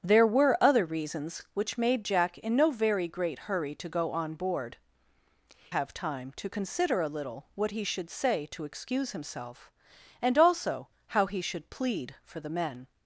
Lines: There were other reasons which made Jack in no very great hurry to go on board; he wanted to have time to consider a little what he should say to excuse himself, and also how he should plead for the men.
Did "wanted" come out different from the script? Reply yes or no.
yes